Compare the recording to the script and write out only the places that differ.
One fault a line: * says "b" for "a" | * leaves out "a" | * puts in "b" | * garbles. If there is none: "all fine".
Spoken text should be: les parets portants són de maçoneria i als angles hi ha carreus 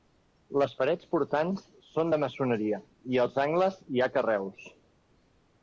all fine